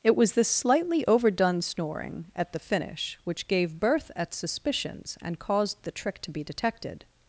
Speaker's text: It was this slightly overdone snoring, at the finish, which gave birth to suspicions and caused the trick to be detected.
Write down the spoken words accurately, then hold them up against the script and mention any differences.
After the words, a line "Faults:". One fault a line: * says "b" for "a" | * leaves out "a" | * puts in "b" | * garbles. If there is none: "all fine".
It was this slightly overdone snoring, at the finish, which gave birth at suspicions and caused the trick to be detected.
Faults:
* says "at" for "to"